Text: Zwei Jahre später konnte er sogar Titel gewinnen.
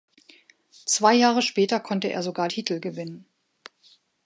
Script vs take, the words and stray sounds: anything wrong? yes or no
no